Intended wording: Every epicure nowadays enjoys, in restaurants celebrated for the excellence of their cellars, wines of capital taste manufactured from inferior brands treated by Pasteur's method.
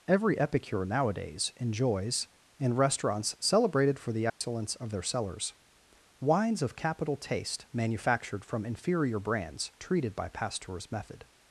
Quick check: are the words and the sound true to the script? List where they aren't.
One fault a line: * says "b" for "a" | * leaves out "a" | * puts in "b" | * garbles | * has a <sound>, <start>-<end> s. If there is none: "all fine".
* has a dropout, 4.3-4.4 s